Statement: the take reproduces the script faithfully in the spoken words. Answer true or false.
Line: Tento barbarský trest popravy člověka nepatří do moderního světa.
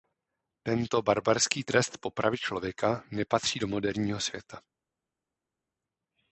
true